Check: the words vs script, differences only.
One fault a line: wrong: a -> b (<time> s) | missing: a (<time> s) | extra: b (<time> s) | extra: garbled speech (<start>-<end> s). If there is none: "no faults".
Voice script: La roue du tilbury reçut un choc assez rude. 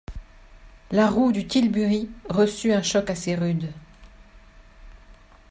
no faults